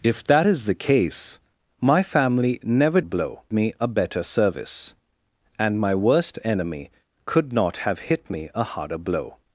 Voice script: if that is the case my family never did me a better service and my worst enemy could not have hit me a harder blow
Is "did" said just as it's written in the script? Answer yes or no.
no